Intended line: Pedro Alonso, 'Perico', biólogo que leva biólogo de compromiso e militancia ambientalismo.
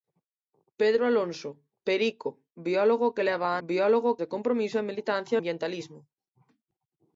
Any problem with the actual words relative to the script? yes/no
no